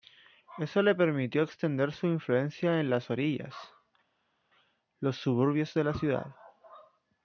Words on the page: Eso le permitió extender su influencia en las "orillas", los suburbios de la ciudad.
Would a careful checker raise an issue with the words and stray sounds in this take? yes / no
no